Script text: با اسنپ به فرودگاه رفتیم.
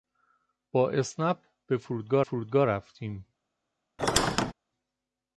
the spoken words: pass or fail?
fail